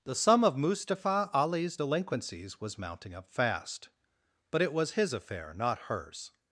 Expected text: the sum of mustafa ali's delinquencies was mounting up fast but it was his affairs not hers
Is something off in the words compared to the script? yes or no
yes